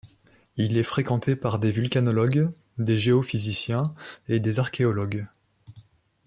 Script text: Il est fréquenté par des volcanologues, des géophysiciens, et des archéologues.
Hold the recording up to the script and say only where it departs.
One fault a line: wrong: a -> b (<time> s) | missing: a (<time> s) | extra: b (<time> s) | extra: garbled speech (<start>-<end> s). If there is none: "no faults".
no faults